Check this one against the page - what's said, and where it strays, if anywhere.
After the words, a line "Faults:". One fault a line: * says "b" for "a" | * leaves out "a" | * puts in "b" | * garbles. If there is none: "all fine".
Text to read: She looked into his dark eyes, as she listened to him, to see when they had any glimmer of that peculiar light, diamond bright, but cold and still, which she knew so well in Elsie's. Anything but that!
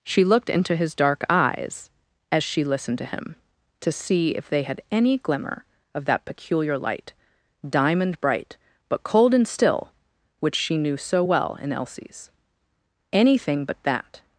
She looked into his dark eyes, as she listened to him, to see if they had any glimmer of that peculiar light, diamond bright, but cold and still, which she knew so well in Elsie's. Anything but that!
Faults:
* says "if" for "when"